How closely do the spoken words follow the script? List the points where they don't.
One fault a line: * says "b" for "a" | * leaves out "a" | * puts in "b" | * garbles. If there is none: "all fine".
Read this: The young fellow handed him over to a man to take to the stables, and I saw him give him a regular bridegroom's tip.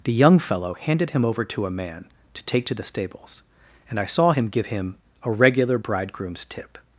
all fine